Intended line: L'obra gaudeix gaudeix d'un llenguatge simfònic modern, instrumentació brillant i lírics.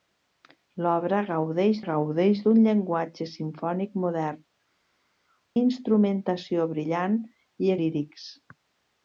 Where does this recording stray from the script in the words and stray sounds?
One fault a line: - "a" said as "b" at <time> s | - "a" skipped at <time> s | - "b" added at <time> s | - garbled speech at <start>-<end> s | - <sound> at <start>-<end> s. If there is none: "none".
none